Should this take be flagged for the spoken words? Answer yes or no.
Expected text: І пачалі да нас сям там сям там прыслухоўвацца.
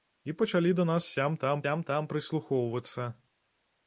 no